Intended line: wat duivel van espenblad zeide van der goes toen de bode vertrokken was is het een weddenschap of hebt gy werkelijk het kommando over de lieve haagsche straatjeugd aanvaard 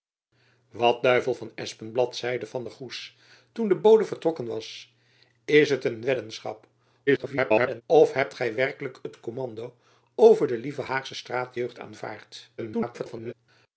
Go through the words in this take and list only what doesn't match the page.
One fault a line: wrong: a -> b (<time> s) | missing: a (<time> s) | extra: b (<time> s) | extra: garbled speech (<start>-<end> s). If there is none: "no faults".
extra: garbled speech (7.1-7.8 s)
extra: garbled speech (12.6-13.3 s)